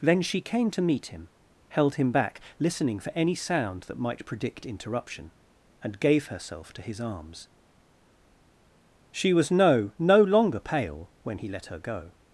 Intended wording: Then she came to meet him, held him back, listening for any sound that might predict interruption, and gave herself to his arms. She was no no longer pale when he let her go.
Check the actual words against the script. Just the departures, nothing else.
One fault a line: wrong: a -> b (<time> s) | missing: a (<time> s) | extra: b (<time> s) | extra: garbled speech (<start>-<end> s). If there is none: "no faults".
no faults